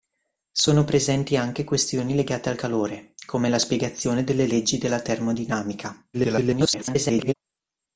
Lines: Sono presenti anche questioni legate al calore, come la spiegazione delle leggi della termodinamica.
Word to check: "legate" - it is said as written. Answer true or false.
true